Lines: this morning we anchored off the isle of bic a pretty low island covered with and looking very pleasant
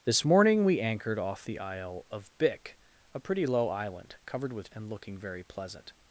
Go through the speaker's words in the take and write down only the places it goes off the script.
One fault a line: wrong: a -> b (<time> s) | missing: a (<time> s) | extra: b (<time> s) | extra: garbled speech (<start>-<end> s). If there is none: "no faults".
no faults